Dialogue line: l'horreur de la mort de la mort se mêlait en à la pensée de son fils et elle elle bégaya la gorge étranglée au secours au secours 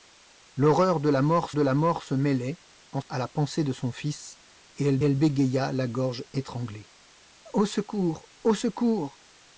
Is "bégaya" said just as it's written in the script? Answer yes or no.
yes